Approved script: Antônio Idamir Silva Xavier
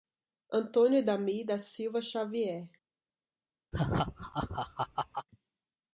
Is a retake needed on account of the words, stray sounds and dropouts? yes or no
yes